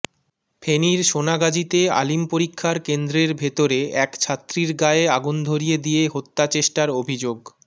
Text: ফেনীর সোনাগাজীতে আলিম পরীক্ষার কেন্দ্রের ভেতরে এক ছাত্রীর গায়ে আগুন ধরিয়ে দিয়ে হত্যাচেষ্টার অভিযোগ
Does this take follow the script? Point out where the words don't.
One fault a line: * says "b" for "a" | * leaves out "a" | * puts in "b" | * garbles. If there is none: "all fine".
all fine